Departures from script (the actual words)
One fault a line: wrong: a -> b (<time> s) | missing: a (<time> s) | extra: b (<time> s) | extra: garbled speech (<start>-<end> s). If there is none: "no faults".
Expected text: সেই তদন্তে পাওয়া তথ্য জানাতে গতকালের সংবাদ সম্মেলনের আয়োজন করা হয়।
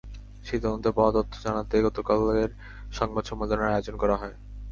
no faults